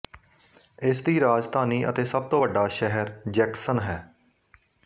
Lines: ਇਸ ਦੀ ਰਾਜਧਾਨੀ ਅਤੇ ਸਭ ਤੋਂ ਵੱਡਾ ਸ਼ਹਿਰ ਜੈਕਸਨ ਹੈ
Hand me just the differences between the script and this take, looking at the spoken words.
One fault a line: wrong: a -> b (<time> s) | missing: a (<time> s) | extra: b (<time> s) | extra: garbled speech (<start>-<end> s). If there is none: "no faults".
no faults